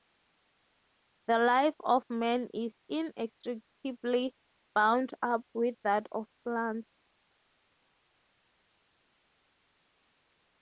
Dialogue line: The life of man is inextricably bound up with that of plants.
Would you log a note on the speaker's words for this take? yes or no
no